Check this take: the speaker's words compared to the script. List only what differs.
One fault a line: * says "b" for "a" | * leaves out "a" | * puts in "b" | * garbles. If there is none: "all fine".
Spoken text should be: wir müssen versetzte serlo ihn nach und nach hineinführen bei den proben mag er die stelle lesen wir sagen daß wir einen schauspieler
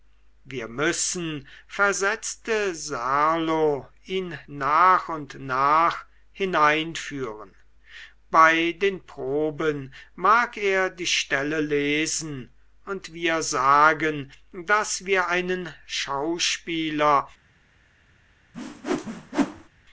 * puts in "und"